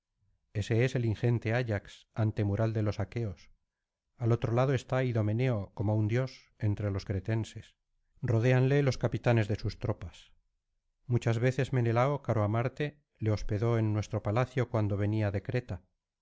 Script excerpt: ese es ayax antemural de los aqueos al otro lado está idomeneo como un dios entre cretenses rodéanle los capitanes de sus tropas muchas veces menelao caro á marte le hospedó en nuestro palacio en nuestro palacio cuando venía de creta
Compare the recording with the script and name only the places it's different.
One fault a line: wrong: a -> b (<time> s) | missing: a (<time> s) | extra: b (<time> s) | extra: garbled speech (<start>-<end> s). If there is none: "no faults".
extra: el ingente (0.9 s)
extra: los (6.9 s)
missing: en nuestro palacio (14.7 s)